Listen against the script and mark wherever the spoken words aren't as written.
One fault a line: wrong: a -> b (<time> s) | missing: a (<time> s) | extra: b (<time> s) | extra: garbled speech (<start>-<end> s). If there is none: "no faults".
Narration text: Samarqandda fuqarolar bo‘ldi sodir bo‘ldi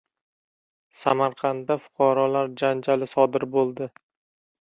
wrong: bo‘ldi -> janjali (2.6 s)